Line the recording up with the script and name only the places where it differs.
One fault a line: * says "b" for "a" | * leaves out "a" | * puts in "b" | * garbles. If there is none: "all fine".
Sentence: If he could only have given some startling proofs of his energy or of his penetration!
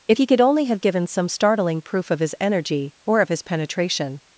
* says "proof" for "proofs"